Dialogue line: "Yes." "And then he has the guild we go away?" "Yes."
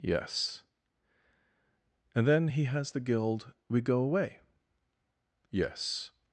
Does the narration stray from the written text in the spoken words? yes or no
no